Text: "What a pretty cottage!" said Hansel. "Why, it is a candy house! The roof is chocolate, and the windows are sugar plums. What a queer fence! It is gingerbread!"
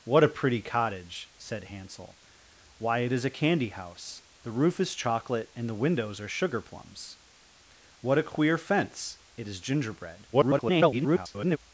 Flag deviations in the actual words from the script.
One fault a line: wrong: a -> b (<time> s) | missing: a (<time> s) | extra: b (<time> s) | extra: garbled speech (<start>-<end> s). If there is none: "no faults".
extra: garbled speech (10.3-11.6 s)